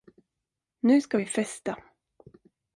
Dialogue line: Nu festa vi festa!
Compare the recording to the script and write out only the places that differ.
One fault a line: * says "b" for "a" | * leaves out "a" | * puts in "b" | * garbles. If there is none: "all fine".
* says "ska" for "festa"